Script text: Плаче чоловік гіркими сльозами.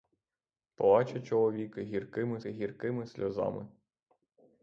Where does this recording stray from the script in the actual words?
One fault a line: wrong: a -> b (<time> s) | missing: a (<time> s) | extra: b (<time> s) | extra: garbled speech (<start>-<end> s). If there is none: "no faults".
extra: гіркими (2.4 s)